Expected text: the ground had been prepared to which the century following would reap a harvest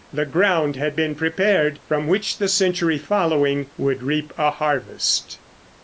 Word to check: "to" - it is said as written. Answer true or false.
false